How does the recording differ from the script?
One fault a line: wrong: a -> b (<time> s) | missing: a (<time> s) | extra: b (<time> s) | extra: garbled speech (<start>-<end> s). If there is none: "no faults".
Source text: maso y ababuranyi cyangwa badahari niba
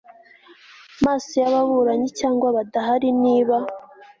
no faults